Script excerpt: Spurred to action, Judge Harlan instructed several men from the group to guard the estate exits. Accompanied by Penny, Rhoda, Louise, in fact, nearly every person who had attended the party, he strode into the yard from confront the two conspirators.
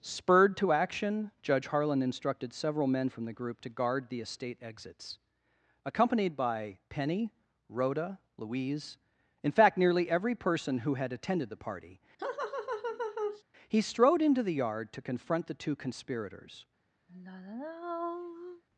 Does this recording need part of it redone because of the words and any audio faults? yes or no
yes